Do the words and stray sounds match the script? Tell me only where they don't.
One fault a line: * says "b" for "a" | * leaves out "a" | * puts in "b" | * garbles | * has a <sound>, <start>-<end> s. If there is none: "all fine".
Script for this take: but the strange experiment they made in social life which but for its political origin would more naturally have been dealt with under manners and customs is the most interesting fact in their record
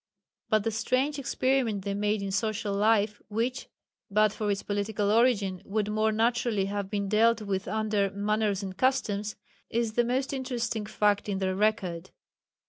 all fine